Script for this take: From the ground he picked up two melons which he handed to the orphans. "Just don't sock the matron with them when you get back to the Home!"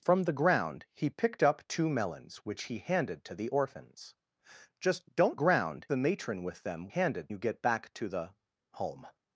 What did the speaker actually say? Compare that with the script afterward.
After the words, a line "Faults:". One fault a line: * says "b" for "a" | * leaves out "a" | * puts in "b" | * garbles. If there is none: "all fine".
From the ground he picked up two melons which he handed to the orphans. "Just don't ground the matron with them handed you get back to the Home!"
Faults:
* says "ground" for "sock"
* says "handed" for "when"